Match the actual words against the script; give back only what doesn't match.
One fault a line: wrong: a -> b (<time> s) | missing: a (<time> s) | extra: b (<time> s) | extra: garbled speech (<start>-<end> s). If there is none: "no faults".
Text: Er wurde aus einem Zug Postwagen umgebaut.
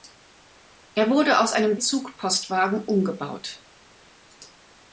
no faults